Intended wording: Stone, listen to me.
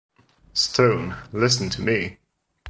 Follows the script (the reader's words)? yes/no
yes